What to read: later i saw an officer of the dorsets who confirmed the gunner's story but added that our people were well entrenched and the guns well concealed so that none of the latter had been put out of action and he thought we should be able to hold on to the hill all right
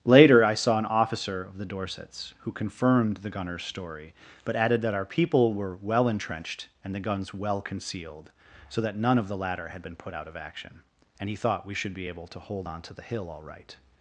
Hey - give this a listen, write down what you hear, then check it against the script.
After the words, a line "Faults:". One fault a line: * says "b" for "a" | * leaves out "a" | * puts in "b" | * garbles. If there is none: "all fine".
later i saw an officer of the dorsets who confirmed the gunner's story but added that our people were well entrenched and the guns well concealed so that none of the latter had been put out of action and he thought we should be able to hold on to the hill all right
Faults:
all fine